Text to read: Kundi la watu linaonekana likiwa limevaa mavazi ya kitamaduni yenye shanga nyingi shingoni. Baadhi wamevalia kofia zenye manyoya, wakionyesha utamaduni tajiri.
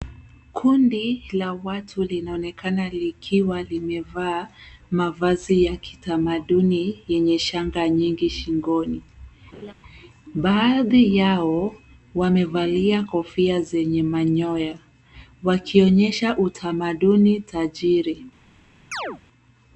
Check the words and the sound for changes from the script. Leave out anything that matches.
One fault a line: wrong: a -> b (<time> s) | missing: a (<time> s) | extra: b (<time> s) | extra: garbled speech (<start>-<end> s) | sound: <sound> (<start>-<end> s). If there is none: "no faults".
sound: laugh (9.5-9.7 s)
extra: yao (11.2 s)
sound: chirp (18.9-19.2 s)